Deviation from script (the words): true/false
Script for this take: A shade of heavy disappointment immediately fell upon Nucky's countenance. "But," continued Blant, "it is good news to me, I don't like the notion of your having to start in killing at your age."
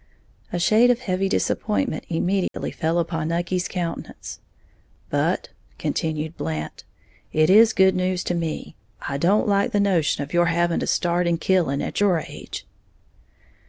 false